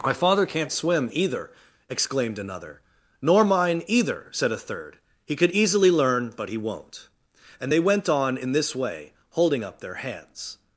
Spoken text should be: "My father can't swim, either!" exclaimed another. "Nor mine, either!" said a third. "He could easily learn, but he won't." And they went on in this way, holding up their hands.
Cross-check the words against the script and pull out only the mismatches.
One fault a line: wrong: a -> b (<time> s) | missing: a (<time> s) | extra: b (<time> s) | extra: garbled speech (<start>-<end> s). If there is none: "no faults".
no faults